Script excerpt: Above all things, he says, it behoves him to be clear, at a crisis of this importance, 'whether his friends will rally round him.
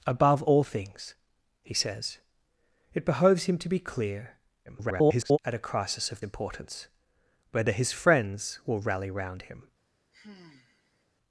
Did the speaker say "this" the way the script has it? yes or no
no